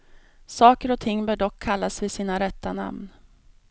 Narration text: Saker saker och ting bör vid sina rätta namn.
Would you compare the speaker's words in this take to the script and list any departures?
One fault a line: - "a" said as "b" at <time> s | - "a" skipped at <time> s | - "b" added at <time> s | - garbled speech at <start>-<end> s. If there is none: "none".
- "saker" skipped at 0.9 s
- "dock kallas" added at 1.4 s